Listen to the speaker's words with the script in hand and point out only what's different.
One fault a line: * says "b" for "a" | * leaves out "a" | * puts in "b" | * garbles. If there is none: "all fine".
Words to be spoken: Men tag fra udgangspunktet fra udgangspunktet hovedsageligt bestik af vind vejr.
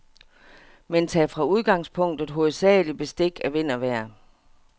* leaves out "fra udgangspunktet"
* puts in "og"